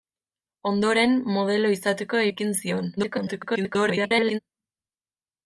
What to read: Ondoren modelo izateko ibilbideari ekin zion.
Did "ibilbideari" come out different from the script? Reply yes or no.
yes